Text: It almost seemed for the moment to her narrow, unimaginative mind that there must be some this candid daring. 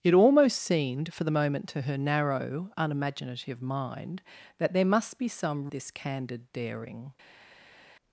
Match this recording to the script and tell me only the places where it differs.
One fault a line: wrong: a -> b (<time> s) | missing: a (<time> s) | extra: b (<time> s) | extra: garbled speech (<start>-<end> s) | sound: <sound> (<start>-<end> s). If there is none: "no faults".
no faults